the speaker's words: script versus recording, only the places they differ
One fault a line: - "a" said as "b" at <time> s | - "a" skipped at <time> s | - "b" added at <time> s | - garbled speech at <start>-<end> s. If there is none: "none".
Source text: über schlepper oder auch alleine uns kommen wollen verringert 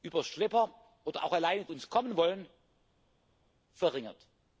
none